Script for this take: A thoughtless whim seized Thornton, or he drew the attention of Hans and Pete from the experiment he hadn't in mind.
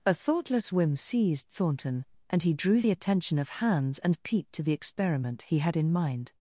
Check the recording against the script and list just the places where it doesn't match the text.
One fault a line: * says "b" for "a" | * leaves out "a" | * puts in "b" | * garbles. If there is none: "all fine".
* says "and" for "or"
* says "to" for "from"
* says "had" for "hadn't"